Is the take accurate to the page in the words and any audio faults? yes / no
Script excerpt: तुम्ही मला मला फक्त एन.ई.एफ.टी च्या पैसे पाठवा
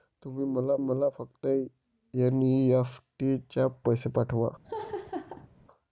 no